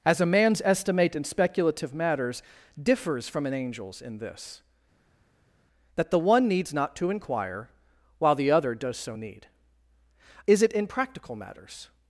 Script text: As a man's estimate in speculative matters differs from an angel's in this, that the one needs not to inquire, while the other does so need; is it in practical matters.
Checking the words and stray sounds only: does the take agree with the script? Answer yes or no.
yes